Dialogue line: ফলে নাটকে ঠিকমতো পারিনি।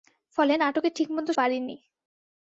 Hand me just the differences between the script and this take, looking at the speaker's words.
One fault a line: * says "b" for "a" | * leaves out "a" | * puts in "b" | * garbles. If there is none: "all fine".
all fine